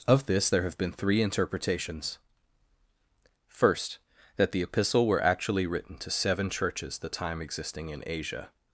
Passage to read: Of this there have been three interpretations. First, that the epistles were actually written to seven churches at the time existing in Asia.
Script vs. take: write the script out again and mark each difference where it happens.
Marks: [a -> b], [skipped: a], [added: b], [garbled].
Of this there have been three interpretations. First, that the [epistles -> epistle] were actually written to seven churches [skipped: at] the time existing in Asia.